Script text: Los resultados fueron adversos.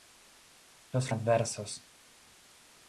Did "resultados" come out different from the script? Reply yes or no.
yes